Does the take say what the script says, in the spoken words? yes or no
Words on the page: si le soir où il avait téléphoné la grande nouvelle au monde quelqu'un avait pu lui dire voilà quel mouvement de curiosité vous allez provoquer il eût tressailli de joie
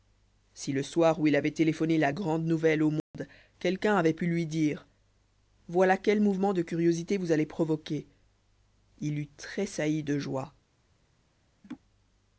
yes